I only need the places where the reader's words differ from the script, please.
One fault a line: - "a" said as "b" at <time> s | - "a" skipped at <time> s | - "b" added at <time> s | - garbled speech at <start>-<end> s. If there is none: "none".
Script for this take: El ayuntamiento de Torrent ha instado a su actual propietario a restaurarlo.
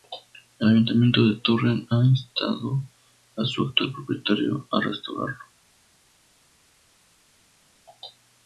none